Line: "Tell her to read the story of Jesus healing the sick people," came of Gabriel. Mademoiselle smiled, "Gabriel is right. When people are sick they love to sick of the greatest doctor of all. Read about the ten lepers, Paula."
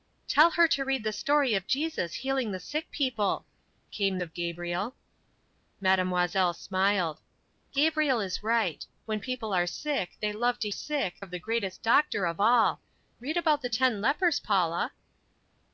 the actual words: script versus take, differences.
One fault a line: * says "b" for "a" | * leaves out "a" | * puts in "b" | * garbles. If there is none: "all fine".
all fine